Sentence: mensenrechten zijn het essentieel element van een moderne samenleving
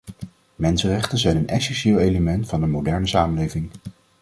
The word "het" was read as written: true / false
false